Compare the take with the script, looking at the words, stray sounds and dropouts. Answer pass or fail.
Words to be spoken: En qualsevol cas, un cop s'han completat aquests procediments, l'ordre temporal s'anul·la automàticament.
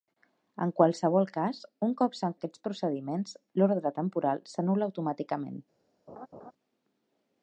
fail